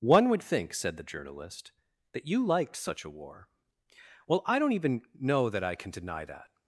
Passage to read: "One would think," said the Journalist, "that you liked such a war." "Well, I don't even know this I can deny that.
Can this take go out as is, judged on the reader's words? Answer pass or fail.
fail